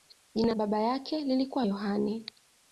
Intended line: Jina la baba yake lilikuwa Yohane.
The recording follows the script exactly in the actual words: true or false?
false